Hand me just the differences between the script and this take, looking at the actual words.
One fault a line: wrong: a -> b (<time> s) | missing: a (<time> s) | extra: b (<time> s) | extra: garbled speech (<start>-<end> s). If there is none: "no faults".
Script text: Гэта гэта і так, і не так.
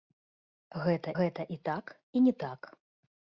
no faults